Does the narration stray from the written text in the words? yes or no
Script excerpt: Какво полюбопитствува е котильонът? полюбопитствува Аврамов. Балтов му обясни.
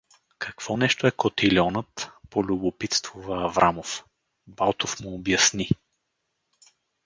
yes